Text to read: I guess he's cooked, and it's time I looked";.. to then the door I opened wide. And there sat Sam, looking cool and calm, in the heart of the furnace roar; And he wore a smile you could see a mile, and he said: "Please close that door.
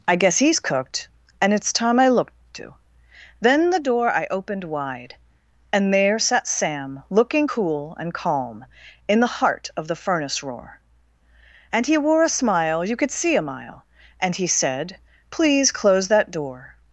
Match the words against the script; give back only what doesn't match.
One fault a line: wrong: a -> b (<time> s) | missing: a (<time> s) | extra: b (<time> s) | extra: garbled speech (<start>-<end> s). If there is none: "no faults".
no faults